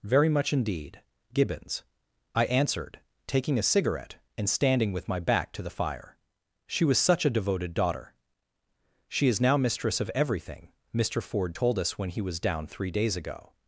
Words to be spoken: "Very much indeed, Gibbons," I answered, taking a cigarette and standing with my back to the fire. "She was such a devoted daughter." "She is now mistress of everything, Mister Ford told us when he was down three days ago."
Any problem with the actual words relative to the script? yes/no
no